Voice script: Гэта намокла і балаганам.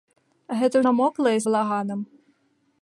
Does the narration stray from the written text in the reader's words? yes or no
no